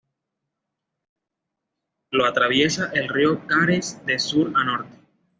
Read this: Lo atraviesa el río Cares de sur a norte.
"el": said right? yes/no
yes